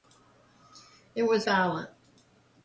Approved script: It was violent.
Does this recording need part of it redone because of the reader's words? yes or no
no